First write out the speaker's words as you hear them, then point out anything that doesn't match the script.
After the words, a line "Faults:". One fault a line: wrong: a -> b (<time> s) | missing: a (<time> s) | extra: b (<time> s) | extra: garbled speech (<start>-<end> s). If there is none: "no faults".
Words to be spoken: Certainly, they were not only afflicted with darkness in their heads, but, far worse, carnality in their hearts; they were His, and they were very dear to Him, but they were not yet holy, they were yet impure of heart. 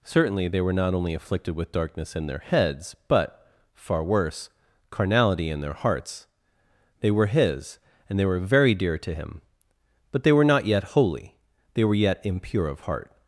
Certainly, they were not only afflicted with darkness in their heads, but, far worse, carnality in their hearts; they were His, and they were very dear to Him, but they were not yet holy, they were yet impure of heart.
Faults:
no faults